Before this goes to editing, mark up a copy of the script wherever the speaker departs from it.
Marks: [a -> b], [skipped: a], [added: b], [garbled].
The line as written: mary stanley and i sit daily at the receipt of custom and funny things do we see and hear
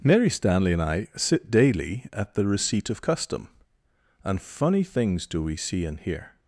mary stanley and i sit daily at the receipt of custom and funny things do we see and hear